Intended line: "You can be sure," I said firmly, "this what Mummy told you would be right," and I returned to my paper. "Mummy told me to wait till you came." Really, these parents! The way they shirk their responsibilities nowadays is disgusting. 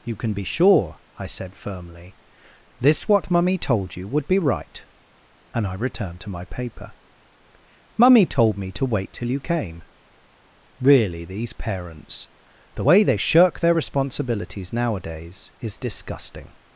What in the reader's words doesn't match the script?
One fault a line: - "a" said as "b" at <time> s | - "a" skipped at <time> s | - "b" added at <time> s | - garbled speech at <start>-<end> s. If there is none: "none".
none